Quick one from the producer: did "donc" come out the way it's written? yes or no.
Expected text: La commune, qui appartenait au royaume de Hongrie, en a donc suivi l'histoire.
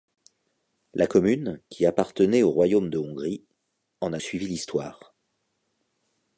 no